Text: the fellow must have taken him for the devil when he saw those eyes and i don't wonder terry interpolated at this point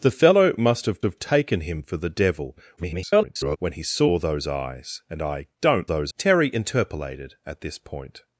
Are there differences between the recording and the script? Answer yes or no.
yes